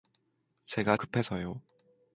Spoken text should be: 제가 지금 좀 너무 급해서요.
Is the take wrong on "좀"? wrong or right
wrong